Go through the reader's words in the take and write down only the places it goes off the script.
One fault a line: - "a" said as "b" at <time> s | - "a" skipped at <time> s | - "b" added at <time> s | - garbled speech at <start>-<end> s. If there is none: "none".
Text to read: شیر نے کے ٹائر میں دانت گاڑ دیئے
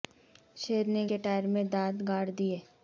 none